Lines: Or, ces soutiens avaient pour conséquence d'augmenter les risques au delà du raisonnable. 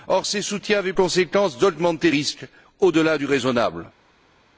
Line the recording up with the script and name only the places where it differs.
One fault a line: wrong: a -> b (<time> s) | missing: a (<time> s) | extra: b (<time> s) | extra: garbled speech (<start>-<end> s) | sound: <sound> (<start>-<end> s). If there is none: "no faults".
missing: pour (0.9 s)
missing: les (2.1 s)